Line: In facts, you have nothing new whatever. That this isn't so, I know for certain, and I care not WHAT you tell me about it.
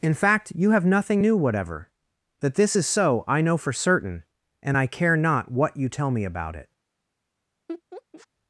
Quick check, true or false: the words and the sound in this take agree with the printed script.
false